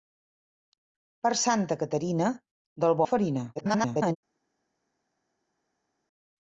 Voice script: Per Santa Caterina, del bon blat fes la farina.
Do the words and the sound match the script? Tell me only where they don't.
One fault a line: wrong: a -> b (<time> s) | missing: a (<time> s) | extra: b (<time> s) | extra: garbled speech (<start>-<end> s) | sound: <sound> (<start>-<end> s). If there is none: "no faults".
missing: bon blat fes (3.0 s)
extra: garbled speech (3.6-4.2 s)